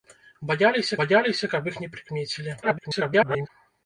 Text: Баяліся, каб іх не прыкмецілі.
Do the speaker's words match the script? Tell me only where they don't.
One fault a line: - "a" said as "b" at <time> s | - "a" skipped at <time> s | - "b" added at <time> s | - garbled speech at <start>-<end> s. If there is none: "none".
- "баяліся" added at 1.0 s
- garbled speech at 2.6-3.5 s